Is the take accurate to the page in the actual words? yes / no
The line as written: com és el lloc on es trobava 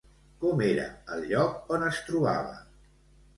no